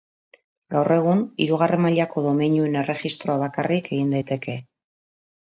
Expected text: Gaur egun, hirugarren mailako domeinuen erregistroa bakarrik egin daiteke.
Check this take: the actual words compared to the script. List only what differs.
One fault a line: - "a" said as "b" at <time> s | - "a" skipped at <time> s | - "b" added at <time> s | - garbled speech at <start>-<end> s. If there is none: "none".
none